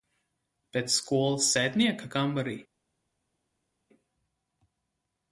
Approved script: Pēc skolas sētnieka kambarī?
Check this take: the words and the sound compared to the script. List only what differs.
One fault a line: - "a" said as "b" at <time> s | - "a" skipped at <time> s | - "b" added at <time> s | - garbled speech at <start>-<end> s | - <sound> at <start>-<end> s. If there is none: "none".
none